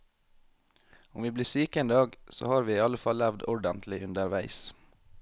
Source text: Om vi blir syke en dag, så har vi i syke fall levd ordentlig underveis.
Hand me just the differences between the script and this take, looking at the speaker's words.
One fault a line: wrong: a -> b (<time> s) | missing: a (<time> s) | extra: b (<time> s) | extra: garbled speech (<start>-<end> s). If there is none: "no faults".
wrong: syke -> alle (2.8 s)